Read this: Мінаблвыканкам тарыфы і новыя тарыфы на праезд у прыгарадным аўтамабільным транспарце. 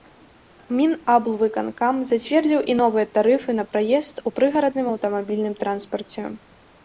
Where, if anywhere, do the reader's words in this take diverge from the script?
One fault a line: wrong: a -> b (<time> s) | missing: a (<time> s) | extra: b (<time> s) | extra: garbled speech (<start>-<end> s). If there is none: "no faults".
wrong: тарыфы -> зацвердзіў (2.1 s)